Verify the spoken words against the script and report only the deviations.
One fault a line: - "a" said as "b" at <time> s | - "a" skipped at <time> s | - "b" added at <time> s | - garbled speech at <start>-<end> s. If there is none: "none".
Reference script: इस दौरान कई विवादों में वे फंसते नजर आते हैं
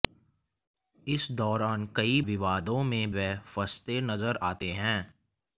none